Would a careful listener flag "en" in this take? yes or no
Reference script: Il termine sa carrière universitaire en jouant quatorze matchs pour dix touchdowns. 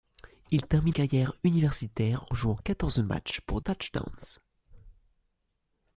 yes